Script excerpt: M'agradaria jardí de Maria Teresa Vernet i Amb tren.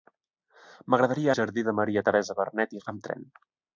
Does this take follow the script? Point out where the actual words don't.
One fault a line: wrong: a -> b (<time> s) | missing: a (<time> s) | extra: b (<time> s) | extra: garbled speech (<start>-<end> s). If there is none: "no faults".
no faults